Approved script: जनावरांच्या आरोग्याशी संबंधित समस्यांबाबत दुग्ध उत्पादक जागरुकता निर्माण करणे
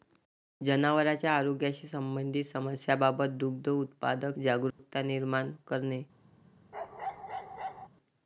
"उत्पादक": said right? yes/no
yes